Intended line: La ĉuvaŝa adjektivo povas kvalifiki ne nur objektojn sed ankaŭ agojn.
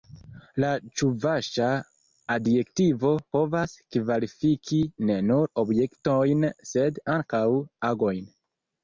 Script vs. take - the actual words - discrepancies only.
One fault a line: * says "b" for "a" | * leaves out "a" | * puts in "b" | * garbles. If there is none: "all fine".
all fine